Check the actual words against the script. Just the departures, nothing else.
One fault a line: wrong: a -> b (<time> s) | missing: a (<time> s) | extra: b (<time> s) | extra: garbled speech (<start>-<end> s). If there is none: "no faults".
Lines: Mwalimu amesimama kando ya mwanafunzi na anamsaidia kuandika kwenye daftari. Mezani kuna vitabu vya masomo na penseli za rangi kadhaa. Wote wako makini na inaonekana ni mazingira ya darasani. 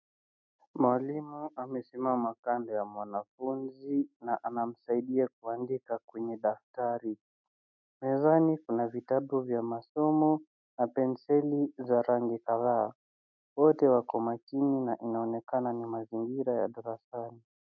no faults